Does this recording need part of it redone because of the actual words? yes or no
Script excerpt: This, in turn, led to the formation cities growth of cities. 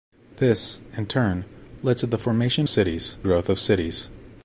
no